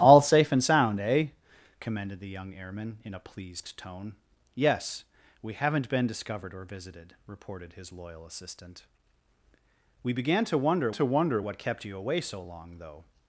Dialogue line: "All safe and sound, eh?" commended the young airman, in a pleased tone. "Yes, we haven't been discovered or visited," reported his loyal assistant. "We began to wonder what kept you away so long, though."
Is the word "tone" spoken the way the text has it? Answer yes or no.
yes